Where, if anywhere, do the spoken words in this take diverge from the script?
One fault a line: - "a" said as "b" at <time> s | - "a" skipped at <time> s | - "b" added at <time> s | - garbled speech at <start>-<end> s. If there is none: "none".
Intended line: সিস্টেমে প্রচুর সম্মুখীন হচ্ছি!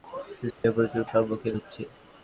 none